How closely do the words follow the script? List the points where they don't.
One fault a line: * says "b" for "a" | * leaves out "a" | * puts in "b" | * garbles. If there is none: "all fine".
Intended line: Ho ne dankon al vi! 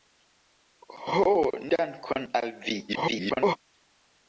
* leaves out "ne"
* garbles